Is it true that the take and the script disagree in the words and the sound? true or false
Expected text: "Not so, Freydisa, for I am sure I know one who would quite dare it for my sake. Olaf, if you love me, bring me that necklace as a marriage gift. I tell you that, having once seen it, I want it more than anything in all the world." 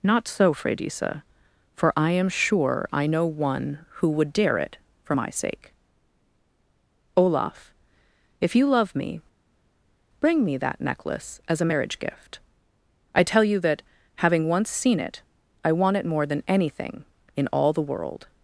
true